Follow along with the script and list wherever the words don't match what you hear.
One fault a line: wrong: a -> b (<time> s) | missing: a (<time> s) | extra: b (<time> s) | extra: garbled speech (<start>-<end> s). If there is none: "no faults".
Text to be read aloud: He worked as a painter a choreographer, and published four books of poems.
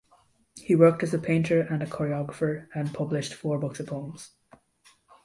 extra: and (1.6 s)